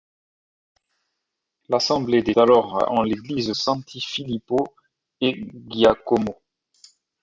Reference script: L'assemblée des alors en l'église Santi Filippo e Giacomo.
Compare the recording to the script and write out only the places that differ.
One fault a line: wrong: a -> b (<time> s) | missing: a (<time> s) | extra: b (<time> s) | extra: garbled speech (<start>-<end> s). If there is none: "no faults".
no faults